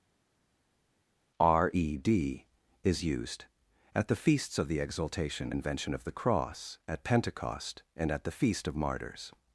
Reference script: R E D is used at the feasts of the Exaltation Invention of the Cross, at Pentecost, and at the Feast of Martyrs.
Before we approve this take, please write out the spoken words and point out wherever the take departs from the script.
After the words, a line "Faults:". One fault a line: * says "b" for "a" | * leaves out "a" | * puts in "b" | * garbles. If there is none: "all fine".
R E D is used at the feasts of the Exaltation Invention of the Cross, at Pentecost, and at the Feast of Martyrs.
Faults:
all fine